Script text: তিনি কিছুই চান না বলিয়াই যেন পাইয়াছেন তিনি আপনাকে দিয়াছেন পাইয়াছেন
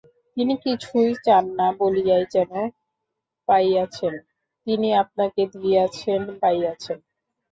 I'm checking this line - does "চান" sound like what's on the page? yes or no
yes